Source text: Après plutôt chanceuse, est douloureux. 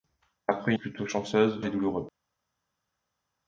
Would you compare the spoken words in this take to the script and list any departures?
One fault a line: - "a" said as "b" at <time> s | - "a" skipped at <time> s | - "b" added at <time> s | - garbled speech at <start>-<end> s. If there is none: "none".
none